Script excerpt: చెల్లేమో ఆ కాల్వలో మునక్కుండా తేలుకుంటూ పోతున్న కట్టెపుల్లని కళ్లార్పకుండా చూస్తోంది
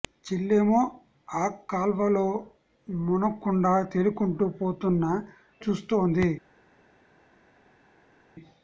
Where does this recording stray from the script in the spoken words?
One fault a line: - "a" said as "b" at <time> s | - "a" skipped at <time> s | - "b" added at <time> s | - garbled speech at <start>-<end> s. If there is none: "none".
- "కట్టెపుల్లని కళ్లార్పకుండా" skipped at 5.0 s